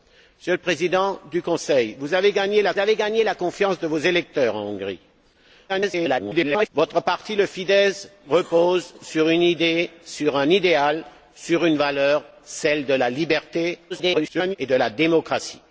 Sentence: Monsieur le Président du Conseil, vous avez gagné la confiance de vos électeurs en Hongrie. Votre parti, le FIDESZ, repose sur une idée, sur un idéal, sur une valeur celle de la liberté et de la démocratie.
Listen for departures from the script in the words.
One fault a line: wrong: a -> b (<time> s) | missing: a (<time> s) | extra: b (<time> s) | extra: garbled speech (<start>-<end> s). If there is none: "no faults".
extra: avez gagné la (2.8 s)
extra: garbled speech (5.7-6.7 s)
extra: garbled speech (13.9-14.6 s)